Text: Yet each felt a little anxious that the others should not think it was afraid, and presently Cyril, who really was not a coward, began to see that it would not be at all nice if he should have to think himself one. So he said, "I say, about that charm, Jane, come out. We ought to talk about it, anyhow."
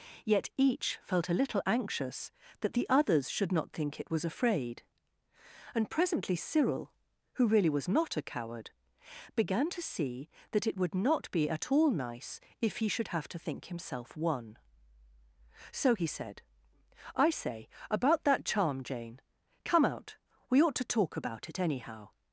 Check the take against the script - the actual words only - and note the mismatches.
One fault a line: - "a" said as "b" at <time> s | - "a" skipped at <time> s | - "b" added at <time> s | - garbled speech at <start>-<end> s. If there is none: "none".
none